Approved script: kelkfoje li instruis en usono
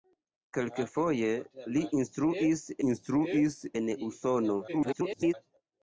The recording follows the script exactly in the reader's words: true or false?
false